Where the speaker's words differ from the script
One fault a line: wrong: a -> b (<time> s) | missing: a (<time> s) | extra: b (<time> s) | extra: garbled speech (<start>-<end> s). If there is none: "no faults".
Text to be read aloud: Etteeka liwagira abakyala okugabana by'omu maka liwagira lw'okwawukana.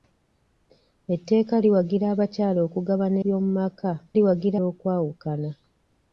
no faults